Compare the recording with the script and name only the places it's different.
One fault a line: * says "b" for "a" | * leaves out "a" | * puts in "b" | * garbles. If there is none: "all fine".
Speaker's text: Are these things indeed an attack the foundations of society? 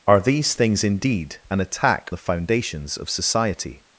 all fine